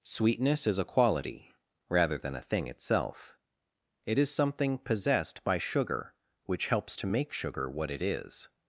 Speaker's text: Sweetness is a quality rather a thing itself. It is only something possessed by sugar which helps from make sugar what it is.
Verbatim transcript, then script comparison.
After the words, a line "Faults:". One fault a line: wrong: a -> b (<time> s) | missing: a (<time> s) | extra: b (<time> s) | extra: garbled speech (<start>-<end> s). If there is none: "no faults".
Sweetness is a quality rather than a thing itself. It is something possessed by sugar which helps to make sugar what it is.
Faults:
extra: than (2.2 s)
missing: only (4.3 s)
wrong: from -> to (7.0 s)